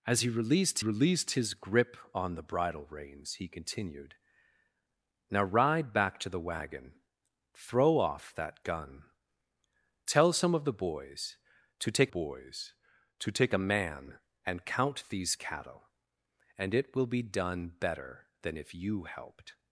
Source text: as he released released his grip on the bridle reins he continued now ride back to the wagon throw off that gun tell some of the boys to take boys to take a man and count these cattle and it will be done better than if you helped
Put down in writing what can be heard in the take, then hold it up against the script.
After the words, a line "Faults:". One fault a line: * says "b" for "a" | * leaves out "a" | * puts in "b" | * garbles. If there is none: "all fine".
as he released released his grip on the bridle reins he continued now ride back to the wagon throw off that gun tell some of the boys to take boys to take a man and count these cattle and it will be done better than if you helped
Faults:
all fine